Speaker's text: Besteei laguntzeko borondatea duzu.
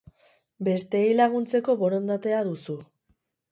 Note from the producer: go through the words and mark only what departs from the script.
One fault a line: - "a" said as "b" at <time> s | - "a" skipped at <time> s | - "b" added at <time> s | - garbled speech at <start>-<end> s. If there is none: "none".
none